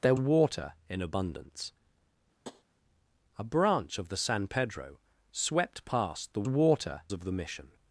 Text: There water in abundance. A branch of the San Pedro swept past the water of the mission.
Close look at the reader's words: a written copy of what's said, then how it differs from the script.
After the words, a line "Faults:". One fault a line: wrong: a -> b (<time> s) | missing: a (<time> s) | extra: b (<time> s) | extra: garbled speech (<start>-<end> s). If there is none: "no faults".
There water in abundance. A branch of the San Pedro swept past the water of the mission.
Faults:
no faults